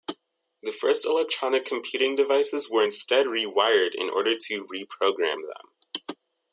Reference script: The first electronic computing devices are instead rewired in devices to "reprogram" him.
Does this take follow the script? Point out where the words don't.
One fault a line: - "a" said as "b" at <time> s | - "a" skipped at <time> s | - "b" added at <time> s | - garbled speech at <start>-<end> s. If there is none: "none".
- "are" said as "were" at 2.7 s
- "devices" said as "order" at 4.1 s
- "him" said as "them" at 5.5 s